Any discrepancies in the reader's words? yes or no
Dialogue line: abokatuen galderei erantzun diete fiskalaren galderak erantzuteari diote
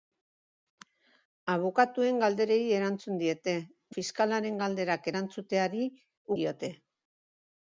no